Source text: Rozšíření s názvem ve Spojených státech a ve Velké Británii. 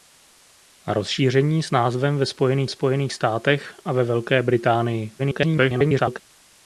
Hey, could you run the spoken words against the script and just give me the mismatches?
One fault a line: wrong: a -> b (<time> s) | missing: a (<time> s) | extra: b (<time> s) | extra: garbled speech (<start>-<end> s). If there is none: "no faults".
extra: Spojených (2.7 s)
extra: garbled speech (5.2-6.2 s)